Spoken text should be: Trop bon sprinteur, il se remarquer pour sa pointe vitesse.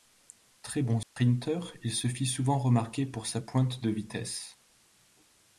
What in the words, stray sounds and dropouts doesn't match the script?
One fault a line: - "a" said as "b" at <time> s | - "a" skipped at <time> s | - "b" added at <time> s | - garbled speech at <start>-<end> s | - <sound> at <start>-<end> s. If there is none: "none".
- "Trop" said as "Très" at 0.6 s
- dropout at 1.0-1.2 s
- "fit souvent" added at 2.1 s
- "de" added at 3.8 s